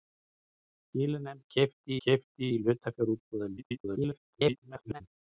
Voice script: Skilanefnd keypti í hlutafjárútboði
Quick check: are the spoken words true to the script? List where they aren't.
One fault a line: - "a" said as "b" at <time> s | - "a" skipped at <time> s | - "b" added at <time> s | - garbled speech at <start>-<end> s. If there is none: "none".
- "keypti" added at 2.1 s
- garbled speech at 3.6-5.0 s